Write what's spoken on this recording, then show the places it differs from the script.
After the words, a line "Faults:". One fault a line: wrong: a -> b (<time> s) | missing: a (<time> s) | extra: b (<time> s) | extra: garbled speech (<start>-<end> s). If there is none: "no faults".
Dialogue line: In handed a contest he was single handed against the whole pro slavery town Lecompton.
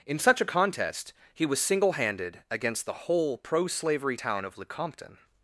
In such a contest he was single handed against the whole pro slavery town of Lecompton.
Faults:
wrong: handed -> such (0.2 s)
extra: of (4.4 s)